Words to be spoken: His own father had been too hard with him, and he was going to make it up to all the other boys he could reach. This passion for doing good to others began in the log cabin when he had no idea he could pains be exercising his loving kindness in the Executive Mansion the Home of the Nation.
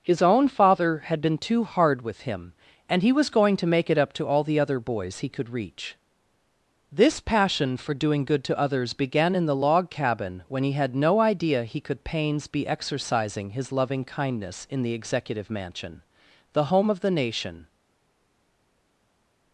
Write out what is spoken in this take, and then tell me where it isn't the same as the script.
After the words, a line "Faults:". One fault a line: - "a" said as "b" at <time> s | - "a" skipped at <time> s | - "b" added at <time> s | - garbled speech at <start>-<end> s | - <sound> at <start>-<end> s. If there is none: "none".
His own father had been too hard with him, and he was going to make it up to all the other boys he could reach. This passion for doing good to others began in the log cabin when he had no idea he could pains be exercising his loving kindness in the Executive Mansion the Home of the Nation.
Faults:
none